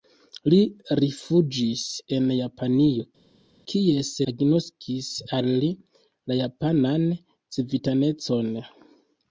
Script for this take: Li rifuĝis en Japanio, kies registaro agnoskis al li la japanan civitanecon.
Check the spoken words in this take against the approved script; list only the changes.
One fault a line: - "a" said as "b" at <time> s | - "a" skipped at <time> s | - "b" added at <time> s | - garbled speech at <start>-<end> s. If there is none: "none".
- "registaro" skipped at 4.1 s